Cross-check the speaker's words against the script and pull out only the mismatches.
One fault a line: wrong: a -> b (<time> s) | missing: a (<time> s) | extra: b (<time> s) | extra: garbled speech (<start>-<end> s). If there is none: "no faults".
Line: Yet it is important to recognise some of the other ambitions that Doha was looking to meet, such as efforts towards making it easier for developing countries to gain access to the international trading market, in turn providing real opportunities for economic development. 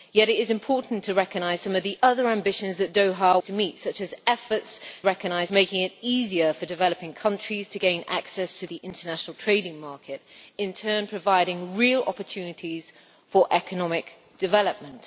missing: was looking (3.4 s)
wrong: towards -> recognise (5.0 s)